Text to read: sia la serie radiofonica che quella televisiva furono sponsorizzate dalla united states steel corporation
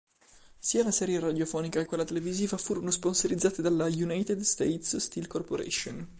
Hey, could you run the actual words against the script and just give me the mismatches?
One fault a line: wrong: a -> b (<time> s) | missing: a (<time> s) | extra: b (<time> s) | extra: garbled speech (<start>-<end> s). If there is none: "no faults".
missing: che (1.8 s)